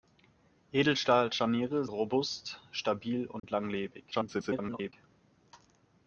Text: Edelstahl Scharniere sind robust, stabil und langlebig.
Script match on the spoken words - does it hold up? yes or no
no